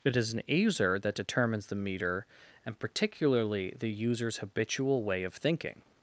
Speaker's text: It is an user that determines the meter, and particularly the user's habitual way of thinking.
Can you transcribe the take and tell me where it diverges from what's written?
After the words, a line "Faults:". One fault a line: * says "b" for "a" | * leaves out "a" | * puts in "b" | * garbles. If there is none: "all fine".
It is an user that determines the meter, and particularly the user's habitual way of thinking.
Faults:
all fine